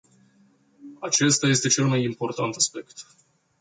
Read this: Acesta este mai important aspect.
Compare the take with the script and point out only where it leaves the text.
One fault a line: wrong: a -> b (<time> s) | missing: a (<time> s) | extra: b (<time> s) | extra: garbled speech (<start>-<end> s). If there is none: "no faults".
extra: cel (1.7 s)